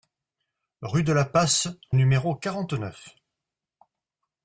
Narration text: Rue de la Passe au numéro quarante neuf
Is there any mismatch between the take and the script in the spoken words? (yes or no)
yes